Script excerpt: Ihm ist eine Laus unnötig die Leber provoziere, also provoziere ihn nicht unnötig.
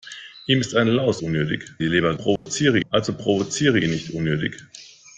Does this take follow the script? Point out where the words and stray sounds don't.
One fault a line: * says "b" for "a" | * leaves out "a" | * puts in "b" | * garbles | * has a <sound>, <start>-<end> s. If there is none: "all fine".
* has a dropout, 2.4-2.5 s